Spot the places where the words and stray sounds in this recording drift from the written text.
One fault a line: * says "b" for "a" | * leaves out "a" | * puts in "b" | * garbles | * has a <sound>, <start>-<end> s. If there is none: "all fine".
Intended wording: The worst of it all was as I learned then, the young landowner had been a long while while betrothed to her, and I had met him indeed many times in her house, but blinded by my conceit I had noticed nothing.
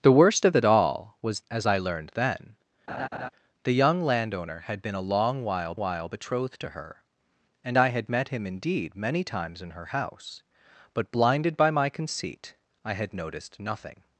* has a laugh, 2.9-3.3 s